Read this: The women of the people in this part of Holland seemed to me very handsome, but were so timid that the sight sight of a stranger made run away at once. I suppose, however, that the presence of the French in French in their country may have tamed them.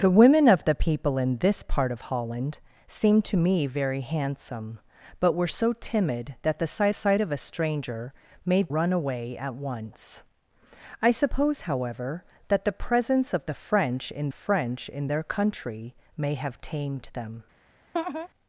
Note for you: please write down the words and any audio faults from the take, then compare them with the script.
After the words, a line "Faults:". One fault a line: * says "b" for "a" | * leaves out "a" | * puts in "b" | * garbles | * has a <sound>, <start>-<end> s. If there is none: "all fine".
The women of the people in this part of Holland seemed to me very handsome, but were so timid that the sight sight of a stranger made run away at once. I suppose, however, that the presence of the French in French in their country may have tamed them.
Faults:
* has a laugh, 17.9-18.3 s